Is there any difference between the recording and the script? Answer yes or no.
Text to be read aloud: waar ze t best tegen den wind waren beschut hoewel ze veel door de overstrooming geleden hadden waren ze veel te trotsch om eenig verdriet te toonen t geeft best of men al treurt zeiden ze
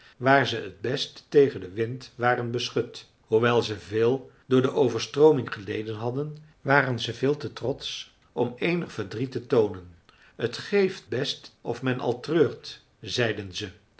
no